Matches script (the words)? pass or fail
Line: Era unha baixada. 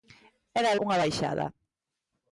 pass